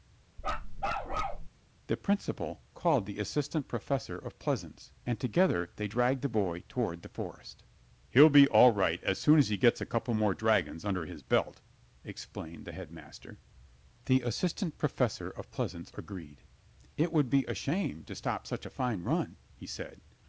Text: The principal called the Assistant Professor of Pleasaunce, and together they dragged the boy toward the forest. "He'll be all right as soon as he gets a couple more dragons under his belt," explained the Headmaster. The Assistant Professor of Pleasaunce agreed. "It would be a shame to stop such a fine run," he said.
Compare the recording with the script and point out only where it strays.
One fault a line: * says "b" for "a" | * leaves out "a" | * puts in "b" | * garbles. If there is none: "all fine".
all fine